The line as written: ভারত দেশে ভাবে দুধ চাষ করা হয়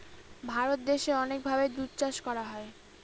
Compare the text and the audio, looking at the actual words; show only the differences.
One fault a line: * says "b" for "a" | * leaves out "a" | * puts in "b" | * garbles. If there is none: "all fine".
* puts in "অনেক"